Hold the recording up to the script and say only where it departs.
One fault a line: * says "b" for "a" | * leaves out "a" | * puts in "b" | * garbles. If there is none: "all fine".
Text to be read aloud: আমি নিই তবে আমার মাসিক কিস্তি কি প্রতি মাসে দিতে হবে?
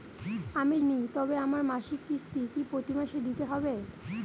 all fine